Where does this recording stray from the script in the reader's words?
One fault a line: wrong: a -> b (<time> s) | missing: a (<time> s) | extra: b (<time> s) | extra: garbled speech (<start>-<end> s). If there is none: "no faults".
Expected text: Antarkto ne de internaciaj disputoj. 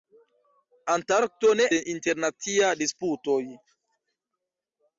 no faults